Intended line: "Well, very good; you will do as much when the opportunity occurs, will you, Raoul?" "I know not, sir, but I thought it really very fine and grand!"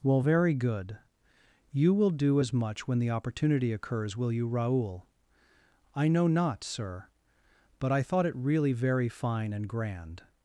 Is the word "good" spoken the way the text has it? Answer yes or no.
yes